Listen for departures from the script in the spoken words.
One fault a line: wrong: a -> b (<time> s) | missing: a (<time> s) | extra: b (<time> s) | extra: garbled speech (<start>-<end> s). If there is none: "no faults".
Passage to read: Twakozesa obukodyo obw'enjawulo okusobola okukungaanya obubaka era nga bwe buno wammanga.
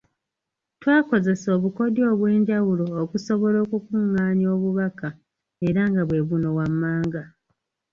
no faults